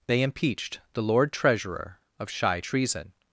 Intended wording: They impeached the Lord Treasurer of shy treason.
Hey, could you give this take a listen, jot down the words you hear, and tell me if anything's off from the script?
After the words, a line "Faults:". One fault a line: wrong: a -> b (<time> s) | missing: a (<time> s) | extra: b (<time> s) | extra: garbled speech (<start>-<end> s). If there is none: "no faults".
They impeached the Lord Treasurer of shy treason.
Faults:
no faults